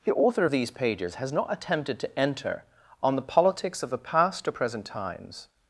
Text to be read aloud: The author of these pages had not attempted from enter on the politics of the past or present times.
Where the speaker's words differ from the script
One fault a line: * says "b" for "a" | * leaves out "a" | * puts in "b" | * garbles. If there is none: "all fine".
* says "has" for "had"
* says "to" for "from"